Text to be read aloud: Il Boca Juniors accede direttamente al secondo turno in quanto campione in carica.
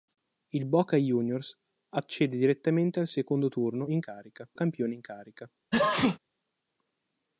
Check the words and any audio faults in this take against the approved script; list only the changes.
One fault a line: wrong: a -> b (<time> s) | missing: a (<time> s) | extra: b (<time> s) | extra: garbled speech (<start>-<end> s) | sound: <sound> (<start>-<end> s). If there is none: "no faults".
wrong: quanto -> carica (4.0 s)
sound: sneeze (5.7-6.2 s)